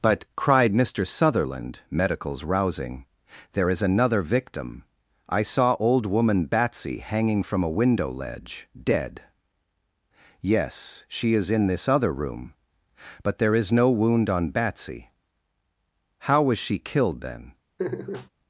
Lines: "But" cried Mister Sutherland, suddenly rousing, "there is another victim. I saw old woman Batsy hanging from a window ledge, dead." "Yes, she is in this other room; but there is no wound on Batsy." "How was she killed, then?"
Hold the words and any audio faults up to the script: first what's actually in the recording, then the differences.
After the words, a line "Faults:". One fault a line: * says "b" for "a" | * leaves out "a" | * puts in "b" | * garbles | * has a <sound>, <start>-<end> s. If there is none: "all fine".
"But" cried Mister Sutherland, medicals rousing, "there is another victim. I saw old woman Batsy hanging from a window ledge, dead." "Yes, she is in this other room; but there is no wound on Batsy." "How was she killed, then?"
Faults:
* says "medicals" for "suddenly"
* has a laugh, 17.8-18.3 s